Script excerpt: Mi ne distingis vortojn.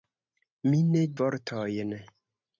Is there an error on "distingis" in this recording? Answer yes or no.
yes